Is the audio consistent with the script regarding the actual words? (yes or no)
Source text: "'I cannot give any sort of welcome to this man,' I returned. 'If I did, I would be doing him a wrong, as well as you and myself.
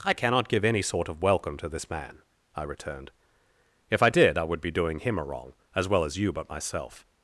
no